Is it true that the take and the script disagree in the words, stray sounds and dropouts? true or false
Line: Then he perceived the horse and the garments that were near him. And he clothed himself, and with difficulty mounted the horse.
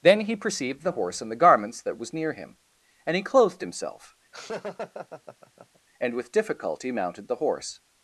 true